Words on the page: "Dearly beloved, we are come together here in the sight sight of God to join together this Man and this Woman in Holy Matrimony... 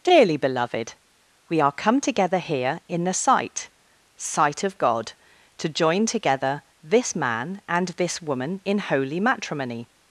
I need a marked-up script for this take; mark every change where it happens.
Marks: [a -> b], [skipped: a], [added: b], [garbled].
"Dearly beloved, we are come together here in the sight sight of God to join together this Man and this Woman in Holy Matrimony...